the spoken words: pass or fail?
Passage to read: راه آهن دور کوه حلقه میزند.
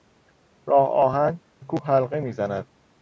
fail